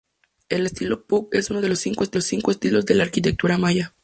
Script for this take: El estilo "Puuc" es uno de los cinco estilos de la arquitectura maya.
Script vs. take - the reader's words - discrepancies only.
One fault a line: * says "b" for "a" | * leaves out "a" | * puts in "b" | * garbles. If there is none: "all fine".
all fine